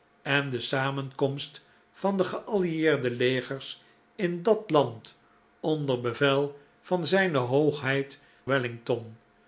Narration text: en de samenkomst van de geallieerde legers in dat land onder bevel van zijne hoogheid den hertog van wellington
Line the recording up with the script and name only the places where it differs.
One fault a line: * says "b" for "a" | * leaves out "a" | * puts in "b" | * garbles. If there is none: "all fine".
* leaves out "den hertog van"